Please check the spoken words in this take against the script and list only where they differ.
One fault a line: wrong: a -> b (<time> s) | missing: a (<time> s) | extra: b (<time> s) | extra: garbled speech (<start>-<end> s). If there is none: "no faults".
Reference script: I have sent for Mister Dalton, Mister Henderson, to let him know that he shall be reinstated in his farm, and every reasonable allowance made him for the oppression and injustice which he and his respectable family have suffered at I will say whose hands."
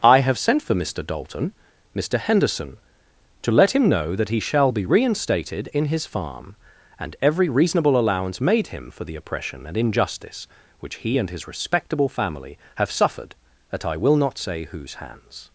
extra: not (14.2 s)